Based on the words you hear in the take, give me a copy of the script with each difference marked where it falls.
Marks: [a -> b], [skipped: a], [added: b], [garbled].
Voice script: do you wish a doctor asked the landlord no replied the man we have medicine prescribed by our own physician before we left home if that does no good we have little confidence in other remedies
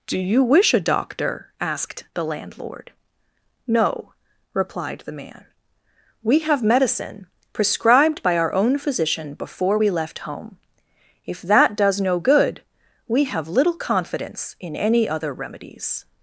do you wish a doctor asked the landlord no replied the man we have medicine prescribed by our own physician before we left home if that does no good we have little confidence in [added: any] other remedies